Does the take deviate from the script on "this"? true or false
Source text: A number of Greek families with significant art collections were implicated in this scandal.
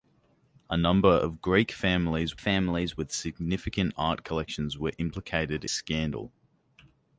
true